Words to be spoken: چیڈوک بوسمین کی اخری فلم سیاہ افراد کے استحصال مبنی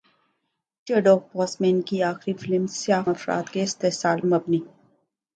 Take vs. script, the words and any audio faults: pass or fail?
pass